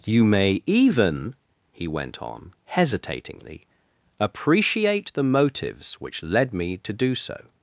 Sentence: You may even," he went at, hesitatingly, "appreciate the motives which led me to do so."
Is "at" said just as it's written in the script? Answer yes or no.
no